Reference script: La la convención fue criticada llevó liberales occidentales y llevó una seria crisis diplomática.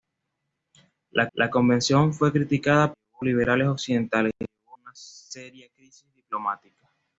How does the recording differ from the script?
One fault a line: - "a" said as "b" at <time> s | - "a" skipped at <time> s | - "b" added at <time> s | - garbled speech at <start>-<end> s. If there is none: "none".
none